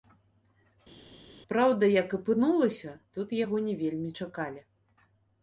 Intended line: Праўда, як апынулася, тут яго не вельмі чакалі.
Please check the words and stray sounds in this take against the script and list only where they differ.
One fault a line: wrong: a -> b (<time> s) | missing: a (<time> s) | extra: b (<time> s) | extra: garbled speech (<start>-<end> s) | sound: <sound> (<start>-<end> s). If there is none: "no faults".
no faults